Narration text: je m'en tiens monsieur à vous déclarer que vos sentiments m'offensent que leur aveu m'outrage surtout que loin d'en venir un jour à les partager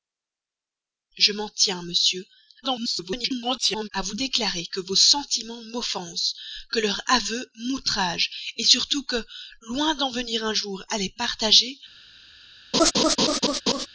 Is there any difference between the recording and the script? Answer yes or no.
yes